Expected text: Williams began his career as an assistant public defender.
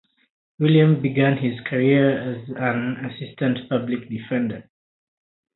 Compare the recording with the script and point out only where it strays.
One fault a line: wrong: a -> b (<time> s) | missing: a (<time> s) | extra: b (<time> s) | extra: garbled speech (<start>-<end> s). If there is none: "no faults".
no faults